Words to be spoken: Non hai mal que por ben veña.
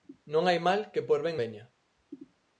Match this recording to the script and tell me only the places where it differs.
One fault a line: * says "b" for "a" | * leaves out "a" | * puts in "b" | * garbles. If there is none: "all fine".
all fine